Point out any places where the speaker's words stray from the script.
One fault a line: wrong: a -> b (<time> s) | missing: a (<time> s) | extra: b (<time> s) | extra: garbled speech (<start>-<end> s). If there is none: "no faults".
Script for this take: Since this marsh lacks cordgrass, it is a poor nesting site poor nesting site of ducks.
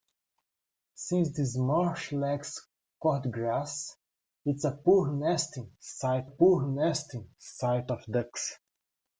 no faults